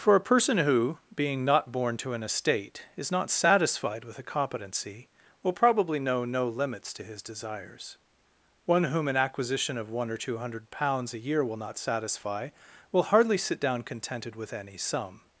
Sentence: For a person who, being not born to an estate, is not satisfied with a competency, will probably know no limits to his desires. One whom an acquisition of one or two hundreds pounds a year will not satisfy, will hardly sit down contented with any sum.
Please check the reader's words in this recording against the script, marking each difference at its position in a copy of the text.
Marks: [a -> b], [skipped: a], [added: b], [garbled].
For a person who, being not born to an estate, is not satisfied with a competency, will probably know no limits to his desires. One whom an acquisition of one or two [hundreds -> hundred] pounds a year will not satisfy, will hardly sit down contented with any sum.